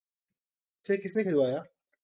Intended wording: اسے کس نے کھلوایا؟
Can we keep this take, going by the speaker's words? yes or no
yes